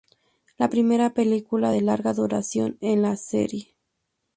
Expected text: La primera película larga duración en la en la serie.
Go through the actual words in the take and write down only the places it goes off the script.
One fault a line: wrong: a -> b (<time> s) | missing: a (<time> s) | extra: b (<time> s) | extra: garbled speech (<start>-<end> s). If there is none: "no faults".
extra: de (1.7 s)
missing: en la (3.2 s)